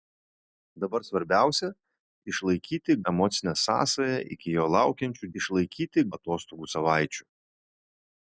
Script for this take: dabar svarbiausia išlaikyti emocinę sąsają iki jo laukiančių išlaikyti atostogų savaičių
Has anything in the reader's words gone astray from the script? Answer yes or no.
no